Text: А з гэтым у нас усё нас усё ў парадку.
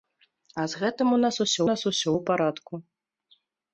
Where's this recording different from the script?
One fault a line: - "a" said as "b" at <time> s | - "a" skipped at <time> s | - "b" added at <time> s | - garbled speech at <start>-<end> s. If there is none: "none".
none